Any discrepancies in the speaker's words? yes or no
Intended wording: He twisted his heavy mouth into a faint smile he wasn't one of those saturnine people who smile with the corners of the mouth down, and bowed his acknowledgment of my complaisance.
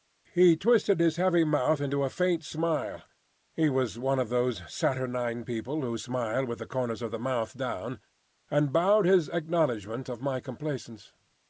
yes